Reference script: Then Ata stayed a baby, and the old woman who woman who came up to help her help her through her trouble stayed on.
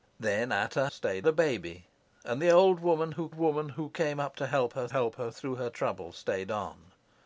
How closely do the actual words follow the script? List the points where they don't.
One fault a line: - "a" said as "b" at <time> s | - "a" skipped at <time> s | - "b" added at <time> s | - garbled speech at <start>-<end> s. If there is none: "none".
none